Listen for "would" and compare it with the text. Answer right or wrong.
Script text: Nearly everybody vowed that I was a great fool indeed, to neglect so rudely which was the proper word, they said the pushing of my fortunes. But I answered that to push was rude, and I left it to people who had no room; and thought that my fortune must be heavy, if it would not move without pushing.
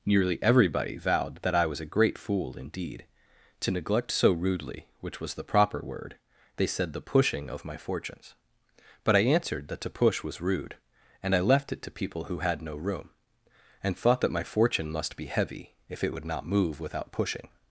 right